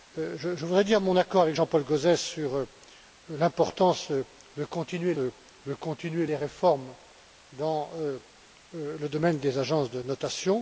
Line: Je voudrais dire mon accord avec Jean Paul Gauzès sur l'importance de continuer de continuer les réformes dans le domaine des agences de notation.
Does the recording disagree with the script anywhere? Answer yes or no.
no